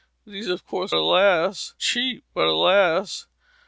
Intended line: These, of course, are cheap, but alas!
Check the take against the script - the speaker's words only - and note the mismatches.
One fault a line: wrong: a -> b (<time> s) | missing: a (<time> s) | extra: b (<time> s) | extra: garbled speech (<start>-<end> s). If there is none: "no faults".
wrong: are -> alas (0.9 s)